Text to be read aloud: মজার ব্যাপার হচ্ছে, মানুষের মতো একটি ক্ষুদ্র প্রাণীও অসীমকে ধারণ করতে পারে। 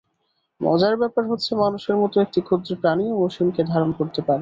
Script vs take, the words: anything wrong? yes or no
no